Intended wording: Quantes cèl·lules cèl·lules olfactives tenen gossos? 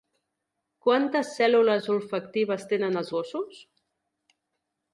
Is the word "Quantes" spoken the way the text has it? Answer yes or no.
yes